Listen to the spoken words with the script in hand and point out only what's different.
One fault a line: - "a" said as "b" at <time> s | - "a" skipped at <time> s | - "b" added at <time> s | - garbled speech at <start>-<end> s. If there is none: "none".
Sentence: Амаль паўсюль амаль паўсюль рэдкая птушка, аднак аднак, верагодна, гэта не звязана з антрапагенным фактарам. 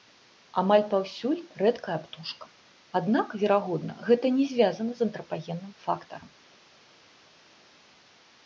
- "амаль паўсюль" skipped at 1.4 s
- "аднак" skipped at 3.3 s